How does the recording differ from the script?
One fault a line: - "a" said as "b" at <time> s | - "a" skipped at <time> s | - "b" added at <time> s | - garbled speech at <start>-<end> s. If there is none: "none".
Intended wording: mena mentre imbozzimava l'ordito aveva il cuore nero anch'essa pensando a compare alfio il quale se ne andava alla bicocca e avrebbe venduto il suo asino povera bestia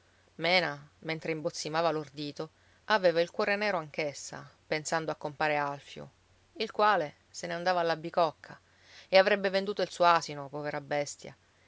none